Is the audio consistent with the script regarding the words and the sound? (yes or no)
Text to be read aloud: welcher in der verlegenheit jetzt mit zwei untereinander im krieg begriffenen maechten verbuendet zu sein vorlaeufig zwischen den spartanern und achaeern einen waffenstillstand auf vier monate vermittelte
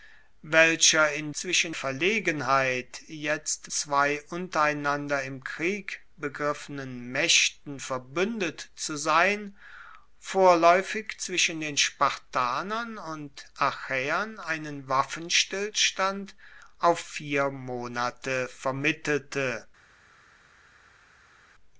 no